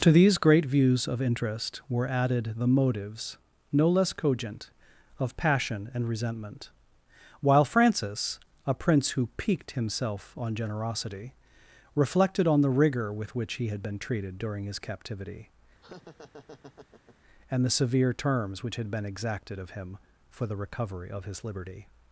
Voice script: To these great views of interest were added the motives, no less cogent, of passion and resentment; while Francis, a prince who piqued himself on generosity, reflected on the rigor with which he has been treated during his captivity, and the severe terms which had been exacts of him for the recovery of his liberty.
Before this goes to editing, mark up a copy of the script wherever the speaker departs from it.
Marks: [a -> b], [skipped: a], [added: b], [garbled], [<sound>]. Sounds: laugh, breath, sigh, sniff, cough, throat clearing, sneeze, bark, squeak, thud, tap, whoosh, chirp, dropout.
To these great views of interest were added the motives, no less cogent, of passion and resentment; while Francis, a prince who piqued himself on generosity, reflected on the rigor with which he [has -> had] been treated during his captivity, [laugh] and the severe terms which had been [exacts -> exacted] of him for the recovery of his liberty.